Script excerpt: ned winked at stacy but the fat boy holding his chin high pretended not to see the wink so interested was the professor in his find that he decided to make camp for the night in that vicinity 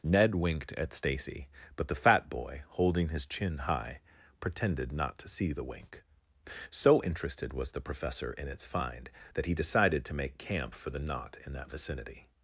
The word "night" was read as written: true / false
false